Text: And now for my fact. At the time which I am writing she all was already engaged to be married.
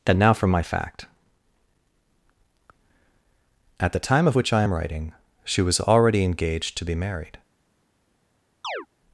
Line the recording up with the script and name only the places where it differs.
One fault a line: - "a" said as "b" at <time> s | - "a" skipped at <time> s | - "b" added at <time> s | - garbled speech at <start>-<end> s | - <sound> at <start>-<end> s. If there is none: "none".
- "of" added at 4.3 s
- "all" skipped at 5.6 s
- chirp at 8.6-8.9 s